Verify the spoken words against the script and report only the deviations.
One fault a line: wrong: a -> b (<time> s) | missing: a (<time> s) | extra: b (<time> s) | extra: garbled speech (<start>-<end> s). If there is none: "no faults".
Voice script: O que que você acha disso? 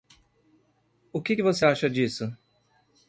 no faults